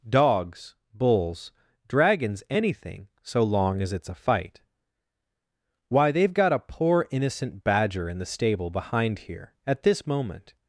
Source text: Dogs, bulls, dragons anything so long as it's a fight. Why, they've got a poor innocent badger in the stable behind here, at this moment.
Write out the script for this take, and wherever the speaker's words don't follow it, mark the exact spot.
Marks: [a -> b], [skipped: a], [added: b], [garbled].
Dogs, bulls, dragons anything so long as it's a fight. Why, they've got a poor innocent badger in the stable behind here, at this moment.